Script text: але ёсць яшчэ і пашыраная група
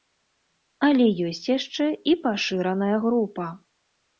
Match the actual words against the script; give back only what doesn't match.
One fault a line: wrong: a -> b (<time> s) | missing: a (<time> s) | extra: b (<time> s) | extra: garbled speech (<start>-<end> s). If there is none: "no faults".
no faults